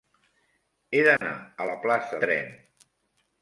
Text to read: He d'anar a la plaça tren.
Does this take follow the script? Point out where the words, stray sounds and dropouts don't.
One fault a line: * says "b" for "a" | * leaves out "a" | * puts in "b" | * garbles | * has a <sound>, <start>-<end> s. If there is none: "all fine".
* has a dropout, 1.2-1.2 s